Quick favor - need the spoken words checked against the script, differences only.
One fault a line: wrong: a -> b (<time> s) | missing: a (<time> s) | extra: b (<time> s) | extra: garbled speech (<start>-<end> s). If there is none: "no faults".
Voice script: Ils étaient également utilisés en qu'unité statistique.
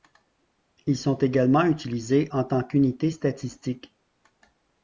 wrong: étaient -> sont (1.0 s)
extra: tant (2.5 s)